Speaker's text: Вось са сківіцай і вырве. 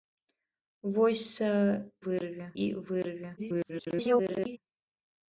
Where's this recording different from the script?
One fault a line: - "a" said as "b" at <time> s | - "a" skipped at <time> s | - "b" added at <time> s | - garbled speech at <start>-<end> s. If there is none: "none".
- "сківіцай" said as "вырве" at 2.1 s
- garbled speech at 3.4-4.6 s